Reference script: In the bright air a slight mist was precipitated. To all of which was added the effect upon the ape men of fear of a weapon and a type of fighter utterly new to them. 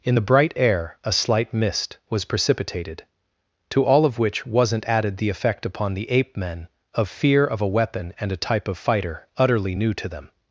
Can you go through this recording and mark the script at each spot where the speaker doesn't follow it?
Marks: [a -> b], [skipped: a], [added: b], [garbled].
In the bright air a slight mist was precipitated. To all of which [was -> wasn't] added the effect upon the ape men of fear of a weapon and a type of fighter utterly new to them.